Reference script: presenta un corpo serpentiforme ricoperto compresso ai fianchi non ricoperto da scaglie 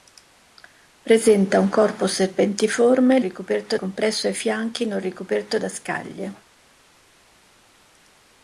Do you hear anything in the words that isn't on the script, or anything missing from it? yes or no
no